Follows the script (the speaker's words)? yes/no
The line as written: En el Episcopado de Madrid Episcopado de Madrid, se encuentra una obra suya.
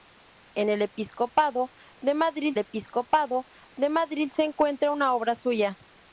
yes